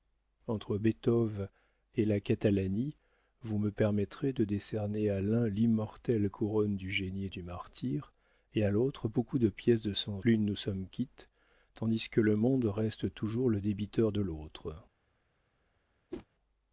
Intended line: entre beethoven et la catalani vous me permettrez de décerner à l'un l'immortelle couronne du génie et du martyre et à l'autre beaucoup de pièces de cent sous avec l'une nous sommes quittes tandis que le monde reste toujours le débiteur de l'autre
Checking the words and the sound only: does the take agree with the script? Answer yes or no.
no